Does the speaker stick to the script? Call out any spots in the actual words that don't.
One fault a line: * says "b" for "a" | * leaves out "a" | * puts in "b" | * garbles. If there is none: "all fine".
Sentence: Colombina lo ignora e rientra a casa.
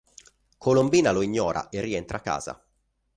all fine